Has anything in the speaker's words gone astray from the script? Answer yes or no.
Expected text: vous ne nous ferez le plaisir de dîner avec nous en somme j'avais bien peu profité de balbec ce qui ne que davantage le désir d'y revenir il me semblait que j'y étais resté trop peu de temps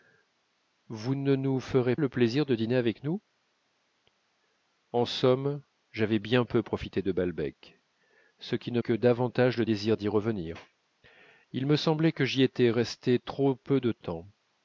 no